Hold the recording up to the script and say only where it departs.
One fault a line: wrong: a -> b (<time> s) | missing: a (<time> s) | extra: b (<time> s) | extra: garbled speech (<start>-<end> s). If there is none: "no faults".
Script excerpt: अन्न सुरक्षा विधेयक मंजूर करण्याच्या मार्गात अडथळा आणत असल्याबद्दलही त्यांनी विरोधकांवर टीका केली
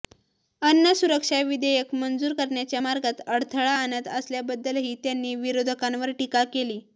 no faults